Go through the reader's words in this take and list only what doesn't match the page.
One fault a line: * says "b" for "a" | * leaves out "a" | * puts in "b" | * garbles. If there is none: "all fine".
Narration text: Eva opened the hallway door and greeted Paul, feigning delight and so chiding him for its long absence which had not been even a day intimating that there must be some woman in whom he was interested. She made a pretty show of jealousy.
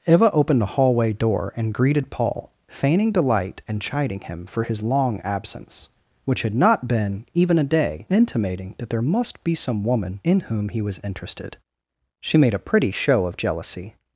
* leaves out "so"
* says "his" for "its"